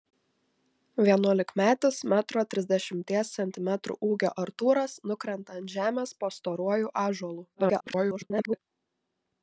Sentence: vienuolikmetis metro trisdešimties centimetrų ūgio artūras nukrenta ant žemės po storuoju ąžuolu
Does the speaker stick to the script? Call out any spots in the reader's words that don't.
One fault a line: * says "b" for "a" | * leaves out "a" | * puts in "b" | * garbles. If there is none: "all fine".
* garbles